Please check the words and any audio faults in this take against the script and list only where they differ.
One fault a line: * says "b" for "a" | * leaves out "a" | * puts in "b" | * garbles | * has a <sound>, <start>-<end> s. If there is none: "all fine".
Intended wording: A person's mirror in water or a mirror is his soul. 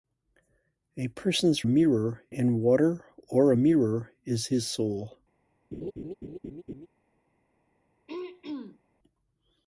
* has a laugh, 5.7-6.9 s
* has a throat clearing, 8.1-8.8 s